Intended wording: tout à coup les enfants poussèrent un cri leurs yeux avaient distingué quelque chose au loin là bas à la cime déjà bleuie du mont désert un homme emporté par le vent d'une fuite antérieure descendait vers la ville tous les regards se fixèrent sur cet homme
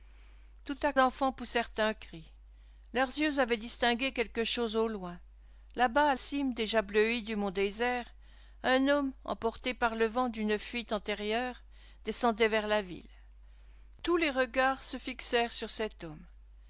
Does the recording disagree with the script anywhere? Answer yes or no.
yes